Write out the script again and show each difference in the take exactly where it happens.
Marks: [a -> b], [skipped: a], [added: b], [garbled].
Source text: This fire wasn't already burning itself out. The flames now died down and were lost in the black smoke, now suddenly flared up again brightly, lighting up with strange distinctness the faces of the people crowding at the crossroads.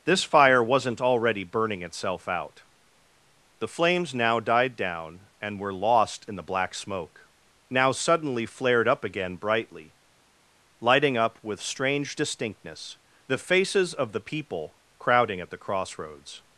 This fire wasn't already burning itself out. The flames now died down and were lost in the black smoke, now suddenly flared up again brightly, lighting up with strange distinctness the faces of the people crowding at the crossroads.